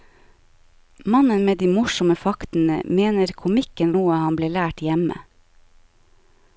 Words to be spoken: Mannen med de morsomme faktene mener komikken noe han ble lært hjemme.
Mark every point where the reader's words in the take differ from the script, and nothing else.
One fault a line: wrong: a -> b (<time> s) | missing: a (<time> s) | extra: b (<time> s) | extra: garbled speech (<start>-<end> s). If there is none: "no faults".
no faults